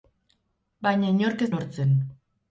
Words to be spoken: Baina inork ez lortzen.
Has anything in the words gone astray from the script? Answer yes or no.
no